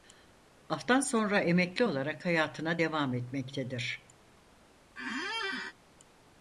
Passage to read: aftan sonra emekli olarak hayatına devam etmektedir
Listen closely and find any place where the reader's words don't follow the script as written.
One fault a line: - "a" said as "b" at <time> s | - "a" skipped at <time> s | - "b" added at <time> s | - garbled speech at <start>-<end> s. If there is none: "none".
none